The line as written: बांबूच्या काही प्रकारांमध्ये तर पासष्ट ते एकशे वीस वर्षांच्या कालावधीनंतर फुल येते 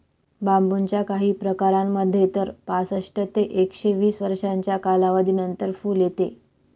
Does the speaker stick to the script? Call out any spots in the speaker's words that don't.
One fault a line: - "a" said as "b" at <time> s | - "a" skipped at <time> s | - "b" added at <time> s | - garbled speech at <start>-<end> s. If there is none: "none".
none